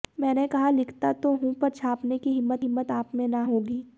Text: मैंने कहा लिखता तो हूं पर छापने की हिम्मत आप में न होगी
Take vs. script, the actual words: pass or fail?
fail